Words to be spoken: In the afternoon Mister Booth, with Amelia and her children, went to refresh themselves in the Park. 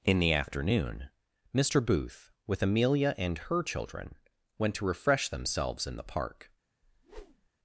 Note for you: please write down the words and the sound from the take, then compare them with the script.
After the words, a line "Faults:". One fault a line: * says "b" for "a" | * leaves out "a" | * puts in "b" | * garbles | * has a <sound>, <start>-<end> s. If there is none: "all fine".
In the afternoon Mister Booth, with Amelia and her children, went to refresh themselves in the Park.
Faults:
* has a whoosh, 6.8-7.5 s